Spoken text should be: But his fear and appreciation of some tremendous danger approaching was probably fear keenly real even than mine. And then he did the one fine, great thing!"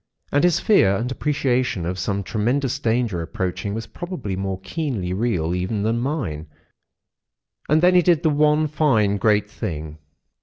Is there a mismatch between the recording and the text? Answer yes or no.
yes